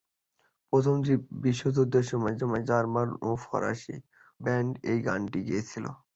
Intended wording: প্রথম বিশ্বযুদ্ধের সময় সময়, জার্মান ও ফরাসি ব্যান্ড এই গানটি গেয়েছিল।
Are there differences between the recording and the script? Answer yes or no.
no